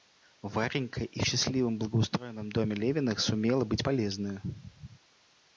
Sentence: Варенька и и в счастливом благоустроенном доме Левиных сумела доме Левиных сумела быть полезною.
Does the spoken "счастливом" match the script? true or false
true